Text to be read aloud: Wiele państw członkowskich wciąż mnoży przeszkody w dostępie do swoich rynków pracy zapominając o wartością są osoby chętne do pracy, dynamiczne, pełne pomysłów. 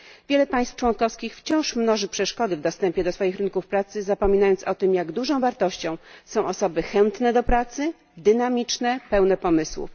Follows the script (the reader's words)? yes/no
no